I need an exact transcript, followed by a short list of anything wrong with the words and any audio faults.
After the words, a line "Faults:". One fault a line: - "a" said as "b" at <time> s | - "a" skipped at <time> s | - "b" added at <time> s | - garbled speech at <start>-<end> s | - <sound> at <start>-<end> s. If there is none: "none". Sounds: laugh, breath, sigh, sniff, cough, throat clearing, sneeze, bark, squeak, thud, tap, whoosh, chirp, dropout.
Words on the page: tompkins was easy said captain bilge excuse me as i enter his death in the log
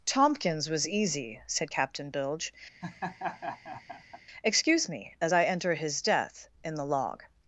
tompkins was easy said captain bilge excuse me as i enter his death in the log
Faults:
- laugh at 2.8-4.2 s